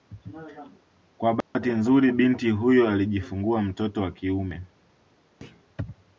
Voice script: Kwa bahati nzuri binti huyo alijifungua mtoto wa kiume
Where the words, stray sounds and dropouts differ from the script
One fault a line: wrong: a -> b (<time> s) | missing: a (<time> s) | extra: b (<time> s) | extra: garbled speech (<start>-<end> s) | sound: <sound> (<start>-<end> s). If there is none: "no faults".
sound: dropout (1.4-1.5 s)
sound: thud (5.4-5.7 s)